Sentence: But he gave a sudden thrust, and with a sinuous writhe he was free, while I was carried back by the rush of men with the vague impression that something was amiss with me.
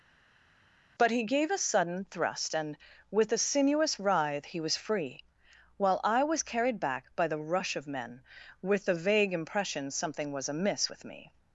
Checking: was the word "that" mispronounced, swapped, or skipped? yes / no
yes